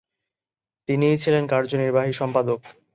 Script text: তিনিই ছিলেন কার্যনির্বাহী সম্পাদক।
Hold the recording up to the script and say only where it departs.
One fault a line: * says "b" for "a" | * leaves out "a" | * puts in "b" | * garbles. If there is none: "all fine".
all fine